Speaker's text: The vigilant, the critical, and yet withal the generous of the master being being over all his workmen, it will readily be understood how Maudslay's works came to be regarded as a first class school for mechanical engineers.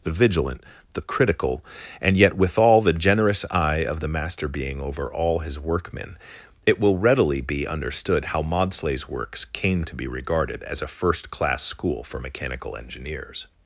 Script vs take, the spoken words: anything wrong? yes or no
yes